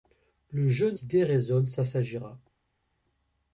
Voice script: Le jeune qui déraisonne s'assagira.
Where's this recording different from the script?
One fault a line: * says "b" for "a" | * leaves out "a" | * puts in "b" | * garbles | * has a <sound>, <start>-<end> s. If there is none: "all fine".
all fine